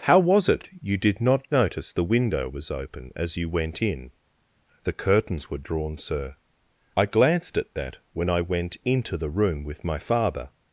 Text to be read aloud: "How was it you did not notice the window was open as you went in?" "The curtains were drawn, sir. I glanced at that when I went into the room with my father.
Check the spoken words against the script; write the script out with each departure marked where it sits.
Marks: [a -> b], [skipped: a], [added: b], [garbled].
"How was it you did not notice the window was open as you went in?" "The curtains were drawn, sir. I glanced at that when I went into the room with my father.